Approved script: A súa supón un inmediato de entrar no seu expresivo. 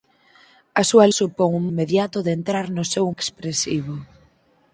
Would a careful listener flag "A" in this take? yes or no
no